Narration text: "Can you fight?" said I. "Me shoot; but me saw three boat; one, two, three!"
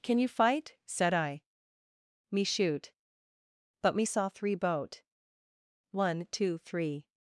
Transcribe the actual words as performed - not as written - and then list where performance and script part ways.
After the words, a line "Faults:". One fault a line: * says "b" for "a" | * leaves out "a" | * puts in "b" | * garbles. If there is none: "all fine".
"Can you fight?" said I. "Me shoot; but me saw three boat; one, two, three!"
Faults:
all fine